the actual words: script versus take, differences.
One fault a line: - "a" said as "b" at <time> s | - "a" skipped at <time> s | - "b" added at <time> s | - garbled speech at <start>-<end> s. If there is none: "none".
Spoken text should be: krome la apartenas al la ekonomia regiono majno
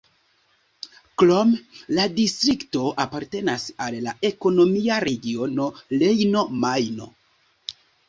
- "distrikto" added at 2.2 s
- "rejno" added at 6.0 s